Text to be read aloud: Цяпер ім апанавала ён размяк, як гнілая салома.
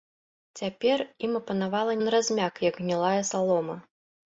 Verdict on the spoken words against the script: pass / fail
pass